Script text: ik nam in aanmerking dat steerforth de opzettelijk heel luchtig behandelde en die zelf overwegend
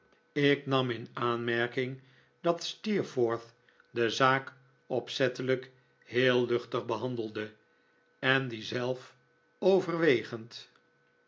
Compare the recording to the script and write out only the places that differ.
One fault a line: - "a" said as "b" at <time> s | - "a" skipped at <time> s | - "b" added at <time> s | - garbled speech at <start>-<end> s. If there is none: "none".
- "zaak" added at 4.1 s